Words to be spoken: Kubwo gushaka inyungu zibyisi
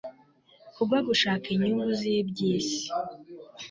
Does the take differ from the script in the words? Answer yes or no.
no